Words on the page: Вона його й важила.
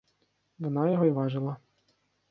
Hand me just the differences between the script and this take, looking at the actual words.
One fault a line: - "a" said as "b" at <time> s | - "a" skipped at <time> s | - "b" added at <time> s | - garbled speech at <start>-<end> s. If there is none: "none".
none